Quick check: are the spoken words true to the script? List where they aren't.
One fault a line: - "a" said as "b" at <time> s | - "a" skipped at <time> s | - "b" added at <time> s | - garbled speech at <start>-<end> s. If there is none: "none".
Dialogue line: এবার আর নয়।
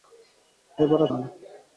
none